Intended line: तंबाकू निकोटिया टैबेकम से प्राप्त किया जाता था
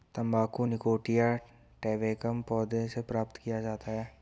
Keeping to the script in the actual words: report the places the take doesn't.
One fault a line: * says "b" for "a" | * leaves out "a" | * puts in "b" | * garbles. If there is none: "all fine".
* puts in "पौधे"
* says "है" for "था"